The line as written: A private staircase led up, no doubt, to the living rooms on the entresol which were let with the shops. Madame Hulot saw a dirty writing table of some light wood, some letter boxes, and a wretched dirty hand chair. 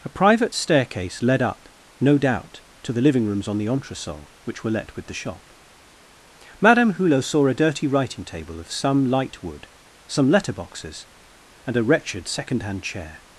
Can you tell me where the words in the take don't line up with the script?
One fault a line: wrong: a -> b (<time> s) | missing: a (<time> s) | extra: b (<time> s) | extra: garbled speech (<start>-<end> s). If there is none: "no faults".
wrong: shops -> shop (5.1 s)
wrong: dirty -> second (12.3 s)